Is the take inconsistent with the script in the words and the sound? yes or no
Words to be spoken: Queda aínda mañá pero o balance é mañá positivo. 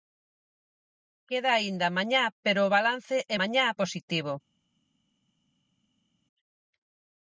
no